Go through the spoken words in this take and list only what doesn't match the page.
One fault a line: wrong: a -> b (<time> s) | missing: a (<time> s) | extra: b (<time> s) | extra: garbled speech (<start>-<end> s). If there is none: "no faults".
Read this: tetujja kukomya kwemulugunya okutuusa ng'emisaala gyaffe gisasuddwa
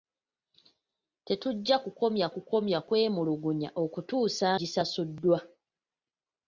extra: kukomya (2.3 s)
missing: ng'emisaala gyaffe (4.5 s)